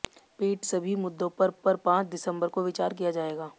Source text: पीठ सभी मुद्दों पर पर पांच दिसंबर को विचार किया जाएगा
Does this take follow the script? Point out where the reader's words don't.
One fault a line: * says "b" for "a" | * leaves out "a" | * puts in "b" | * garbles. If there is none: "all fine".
all fine